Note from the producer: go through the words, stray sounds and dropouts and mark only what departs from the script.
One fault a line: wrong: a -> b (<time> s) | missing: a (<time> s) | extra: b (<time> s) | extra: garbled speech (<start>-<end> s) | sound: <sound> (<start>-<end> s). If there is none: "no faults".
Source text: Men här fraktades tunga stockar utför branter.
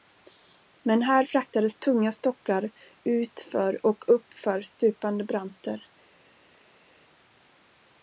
extra: och uppför stupande (3.9 s)